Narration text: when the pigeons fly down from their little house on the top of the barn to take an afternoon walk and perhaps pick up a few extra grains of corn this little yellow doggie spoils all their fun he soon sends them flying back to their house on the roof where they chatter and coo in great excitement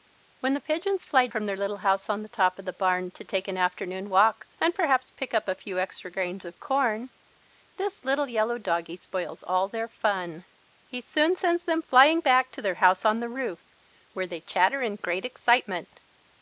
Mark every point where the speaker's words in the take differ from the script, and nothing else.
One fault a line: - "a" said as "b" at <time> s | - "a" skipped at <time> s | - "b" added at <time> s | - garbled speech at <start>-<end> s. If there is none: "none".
- "down" skipped at 1.3 s
- "coo in" skipped at 15.0 s